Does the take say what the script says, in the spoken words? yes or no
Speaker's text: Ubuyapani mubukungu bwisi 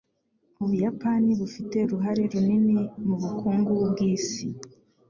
no